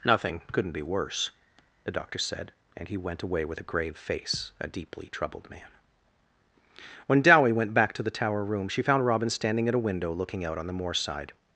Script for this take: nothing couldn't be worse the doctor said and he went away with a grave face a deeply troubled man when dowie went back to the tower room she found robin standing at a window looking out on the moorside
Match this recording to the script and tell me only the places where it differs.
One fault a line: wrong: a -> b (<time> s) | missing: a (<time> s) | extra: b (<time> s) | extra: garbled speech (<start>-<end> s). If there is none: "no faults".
no faults